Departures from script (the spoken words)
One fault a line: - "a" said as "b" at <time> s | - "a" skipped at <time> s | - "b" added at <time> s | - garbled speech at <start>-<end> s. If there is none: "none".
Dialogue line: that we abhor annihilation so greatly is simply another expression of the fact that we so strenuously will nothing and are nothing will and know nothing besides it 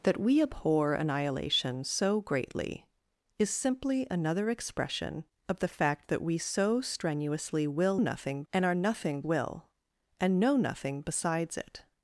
none